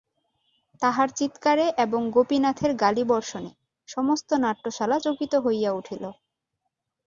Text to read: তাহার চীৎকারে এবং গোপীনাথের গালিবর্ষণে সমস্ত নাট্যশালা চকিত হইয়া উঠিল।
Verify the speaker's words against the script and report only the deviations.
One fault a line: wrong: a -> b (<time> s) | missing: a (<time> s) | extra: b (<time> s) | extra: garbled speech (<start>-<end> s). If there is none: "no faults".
no faults